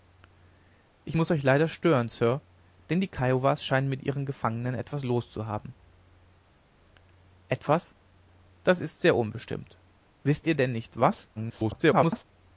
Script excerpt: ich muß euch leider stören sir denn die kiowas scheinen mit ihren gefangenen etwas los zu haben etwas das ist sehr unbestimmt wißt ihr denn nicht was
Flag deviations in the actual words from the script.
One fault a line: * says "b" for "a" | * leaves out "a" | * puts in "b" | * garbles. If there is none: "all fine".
* garbles